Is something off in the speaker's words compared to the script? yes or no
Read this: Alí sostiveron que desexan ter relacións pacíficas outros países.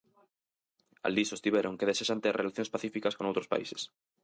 yes